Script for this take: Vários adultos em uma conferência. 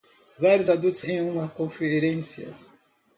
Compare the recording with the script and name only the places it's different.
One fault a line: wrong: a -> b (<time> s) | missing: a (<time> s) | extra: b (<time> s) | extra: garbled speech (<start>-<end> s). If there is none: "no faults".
no faults